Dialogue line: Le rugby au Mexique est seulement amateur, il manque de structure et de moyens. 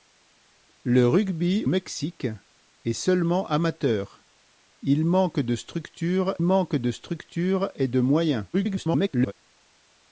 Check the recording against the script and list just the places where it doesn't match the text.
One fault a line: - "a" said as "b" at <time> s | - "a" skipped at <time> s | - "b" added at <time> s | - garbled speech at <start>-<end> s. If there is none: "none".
- "au" skipped at 1.6 s
- "manque de structure" added at 6.4 s
- garbled speech at 8.5-9.3 s